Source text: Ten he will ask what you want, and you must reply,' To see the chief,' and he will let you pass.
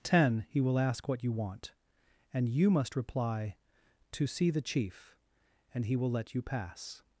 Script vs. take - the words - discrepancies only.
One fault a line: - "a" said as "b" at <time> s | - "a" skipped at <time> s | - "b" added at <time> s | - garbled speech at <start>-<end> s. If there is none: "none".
none